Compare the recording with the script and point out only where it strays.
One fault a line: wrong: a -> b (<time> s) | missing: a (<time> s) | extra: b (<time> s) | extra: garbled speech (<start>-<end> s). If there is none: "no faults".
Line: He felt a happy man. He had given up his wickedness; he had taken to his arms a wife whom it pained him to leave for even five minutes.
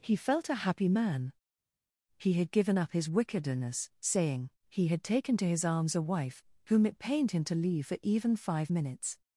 extra: saying (4.0 s)